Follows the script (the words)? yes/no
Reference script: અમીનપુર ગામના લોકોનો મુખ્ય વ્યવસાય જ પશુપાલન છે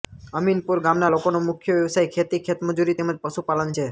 no